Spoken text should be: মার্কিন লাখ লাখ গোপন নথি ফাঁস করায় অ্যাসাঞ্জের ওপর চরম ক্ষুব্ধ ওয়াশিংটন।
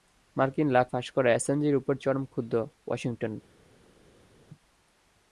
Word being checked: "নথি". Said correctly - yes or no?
no